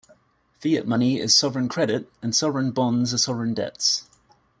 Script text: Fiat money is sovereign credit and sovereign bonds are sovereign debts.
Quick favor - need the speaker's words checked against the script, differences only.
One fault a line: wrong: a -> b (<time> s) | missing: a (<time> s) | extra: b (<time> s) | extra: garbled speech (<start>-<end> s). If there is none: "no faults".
no faults